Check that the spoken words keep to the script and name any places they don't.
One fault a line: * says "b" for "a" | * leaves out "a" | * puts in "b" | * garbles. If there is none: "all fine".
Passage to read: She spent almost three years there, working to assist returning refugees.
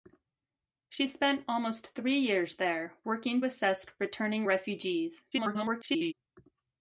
* leaves out "to"
* garbles